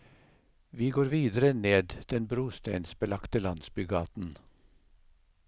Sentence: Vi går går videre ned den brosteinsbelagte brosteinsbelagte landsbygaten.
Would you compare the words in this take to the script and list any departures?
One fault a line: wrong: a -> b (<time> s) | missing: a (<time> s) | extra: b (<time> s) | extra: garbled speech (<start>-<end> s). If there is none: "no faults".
missing: går (1.1 s)
missing: brosteinsbelagte (3.4 s)